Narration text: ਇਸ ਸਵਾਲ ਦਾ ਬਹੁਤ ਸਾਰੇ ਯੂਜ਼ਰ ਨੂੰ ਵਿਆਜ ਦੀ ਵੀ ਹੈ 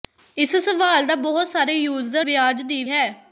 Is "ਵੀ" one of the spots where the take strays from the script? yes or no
yes